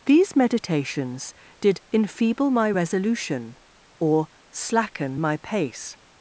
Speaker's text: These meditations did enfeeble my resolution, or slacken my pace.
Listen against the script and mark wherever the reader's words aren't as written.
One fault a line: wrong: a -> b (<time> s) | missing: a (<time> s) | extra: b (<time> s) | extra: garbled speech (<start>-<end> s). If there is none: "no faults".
no faults